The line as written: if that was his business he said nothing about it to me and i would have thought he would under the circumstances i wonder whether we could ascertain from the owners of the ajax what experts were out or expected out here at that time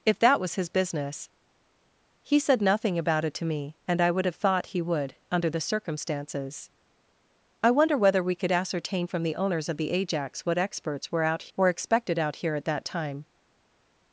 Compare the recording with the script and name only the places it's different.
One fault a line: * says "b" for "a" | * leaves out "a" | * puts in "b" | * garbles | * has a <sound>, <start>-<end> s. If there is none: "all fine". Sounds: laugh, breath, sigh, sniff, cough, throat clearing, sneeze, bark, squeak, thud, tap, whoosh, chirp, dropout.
all fine